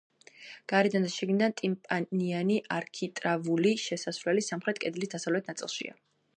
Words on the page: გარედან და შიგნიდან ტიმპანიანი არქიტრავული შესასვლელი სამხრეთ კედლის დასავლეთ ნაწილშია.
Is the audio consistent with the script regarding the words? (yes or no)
yes